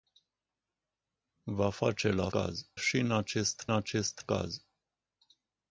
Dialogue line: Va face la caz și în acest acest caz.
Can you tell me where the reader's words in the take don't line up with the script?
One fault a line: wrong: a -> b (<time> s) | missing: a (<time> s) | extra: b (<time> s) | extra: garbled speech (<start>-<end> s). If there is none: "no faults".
no faults